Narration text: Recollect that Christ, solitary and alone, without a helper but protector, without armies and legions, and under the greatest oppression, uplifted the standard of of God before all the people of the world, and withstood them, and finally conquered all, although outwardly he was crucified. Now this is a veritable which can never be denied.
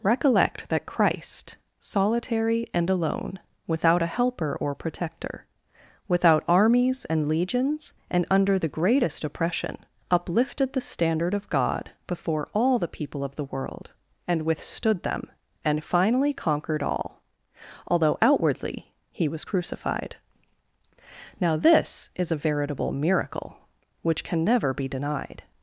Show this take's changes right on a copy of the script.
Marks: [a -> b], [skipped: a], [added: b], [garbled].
Recollect that Christ, solitary and alone, without a helper [but -> or] protector, without armies and legions, and under the greatest oppression, uplifted the standard of [skipped: of] God before all the people of the world, and withstood them, and finally conquered all, although outwardly he was crucified. Now this is a veritable [added: miracle] which can never be denied.